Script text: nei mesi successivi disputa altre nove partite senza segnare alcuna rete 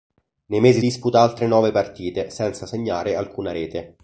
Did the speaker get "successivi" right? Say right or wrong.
wrong